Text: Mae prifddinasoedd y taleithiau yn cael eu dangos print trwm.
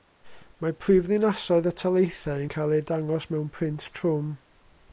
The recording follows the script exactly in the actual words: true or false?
false